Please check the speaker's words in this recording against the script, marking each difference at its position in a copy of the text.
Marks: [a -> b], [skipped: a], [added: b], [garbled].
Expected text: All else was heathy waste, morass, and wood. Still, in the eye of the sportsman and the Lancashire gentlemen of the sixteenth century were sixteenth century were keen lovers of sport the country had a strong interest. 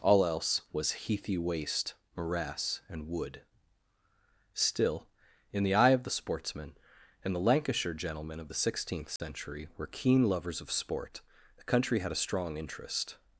All else was heathy waste, morass, and wood. Still, in the eye of the sportsman and the Lancashire gentlemen of the sixteenth century were [skipped: sixteenth century were] keen lovers of sport the country had a strong interest.